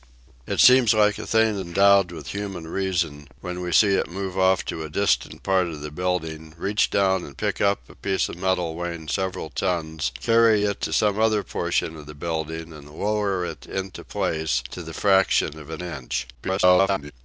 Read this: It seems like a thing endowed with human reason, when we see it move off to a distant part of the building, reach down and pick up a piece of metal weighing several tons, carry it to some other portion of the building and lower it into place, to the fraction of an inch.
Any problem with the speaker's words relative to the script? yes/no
yes